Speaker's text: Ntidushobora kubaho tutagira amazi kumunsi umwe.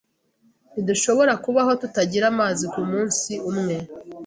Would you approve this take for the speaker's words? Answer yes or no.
yes